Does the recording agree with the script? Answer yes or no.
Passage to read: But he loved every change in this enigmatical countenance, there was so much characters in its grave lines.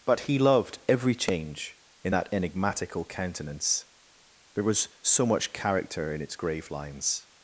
no